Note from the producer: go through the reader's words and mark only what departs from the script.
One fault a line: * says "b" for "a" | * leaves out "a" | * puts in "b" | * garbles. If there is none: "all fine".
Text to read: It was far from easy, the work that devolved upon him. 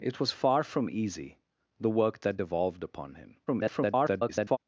* garbles